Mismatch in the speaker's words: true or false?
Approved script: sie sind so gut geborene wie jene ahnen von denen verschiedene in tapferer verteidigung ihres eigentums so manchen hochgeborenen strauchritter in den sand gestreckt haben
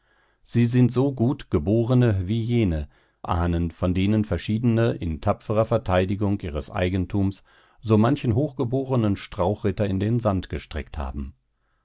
false